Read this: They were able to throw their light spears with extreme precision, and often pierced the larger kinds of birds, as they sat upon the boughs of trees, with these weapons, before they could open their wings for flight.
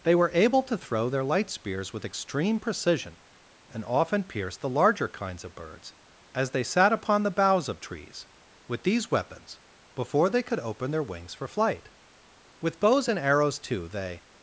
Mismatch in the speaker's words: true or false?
true